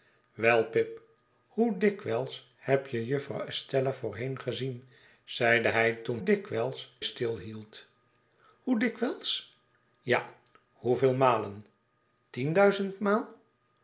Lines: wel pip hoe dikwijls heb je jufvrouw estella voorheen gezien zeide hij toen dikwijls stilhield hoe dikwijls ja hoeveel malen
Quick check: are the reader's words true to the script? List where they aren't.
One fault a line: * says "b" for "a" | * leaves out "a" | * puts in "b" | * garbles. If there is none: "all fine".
all fine